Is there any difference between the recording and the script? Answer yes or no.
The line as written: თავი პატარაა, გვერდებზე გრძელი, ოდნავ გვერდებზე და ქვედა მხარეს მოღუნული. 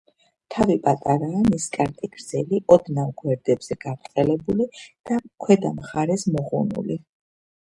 yes